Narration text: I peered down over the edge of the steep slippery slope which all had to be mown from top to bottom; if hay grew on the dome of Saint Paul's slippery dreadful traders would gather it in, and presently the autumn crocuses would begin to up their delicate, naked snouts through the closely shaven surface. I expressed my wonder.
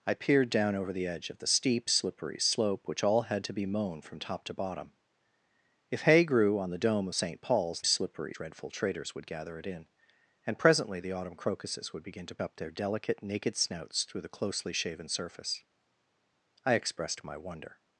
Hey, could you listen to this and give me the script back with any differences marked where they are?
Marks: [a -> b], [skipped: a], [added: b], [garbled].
I peered down over the edge of the steep slippery slope which all had to be mown from top to bottom; if hay grew on the dome of Saint Paul's slippery dreadful traders would gather it in, and presently the autumn crocuses would begin to up their delicate, naked snouts through the closely shaven surface. I expressed my wonder.